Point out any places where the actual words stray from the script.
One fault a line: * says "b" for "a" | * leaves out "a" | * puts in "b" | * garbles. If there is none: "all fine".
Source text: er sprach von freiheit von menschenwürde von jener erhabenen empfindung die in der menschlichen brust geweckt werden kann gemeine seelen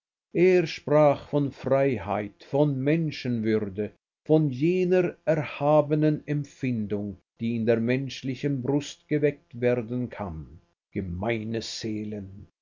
all fine